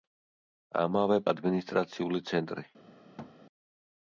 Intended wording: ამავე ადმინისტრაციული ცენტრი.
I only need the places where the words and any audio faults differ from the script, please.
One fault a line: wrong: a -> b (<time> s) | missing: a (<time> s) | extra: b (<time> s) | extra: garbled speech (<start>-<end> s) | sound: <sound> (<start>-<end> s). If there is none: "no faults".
sound: thud (3.2-3.3 s)